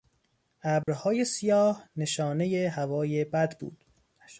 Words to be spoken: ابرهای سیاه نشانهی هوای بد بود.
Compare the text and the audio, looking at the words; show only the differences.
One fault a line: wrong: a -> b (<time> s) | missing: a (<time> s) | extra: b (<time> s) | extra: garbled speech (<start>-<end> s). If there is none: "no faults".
no faults